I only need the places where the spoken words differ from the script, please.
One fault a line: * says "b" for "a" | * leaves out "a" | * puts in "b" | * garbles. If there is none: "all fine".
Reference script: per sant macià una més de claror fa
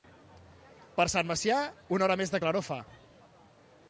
* puts in "hora"